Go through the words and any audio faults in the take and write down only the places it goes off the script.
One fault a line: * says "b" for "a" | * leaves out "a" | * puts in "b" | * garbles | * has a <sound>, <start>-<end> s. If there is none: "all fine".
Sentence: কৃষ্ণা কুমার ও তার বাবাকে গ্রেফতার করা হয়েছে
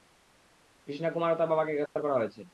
* has a dropout, 1.9-2.0 s